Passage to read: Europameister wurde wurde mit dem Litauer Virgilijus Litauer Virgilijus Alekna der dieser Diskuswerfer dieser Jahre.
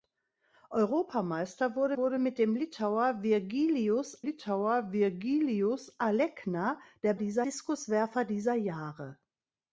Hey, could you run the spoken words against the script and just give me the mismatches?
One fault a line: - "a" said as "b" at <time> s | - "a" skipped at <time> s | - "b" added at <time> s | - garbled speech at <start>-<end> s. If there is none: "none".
none